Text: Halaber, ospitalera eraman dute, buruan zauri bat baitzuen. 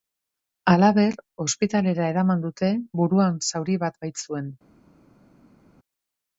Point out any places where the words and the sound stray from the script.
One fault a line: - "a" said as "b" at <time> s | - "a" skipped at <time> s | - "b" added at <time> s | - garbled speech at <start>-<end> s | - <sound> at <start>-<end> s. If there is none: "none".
none